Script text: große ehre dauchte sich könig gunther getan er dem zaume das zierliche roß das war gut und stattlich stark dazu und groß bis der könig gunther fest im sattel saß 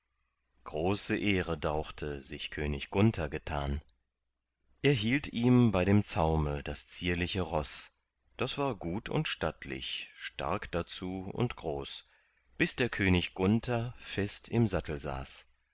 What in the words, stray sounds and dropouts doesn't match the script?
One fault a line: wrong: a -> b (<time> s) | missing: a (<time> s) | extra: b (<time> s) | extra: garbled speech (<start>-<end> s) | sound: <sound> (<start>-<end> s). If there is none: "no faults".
extra: hielt ihm bei (4.9 s)